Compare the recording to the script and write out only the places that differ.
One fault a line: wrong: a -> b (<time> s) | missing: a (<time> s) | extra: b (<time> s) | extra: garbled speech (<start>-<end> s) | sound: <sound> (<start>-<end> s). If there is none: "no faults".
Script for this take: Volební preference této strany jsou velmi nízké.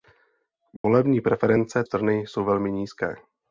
sound: dropout (0.8-0.8 s)
missing: této (1.8 s)